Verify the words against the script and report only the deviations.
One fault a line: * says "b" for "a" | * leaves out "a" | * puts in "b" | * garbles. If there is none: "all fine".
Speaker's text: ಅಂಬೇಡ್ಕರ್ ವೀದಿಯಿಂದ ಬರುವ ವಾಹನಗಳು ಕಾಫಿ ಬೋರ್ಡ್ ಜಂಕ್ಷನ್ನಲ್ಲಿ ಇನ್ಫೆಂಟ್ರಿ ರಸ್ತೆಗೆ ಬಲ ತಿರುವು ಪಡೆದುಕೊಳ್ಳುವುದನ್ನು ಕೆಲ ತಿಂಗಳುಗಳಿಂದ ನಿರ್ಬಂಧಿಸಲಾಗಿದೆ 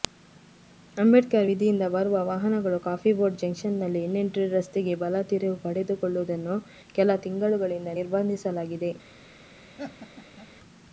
all fine